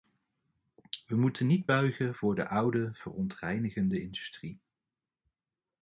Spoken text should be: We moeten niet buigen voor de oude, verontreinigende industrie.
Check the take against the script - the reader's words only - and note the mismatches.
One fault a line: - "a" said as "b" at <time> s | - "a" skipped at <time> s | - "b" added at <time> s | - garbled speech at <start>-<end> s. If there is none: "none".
none